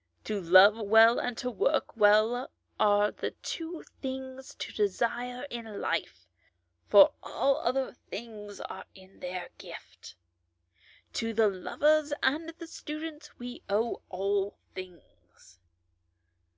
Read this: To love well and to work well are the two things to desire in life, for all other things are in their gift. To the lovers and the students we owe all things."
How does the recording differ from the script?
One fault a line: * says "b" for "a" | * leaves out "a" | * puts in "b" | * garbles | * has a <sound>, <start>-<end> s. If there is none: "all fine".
all fine